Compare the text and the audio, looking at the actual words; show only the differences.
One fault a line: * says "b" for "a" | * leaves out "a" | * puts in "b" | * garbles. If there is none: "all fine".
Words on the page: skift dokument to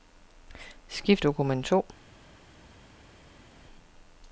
all fine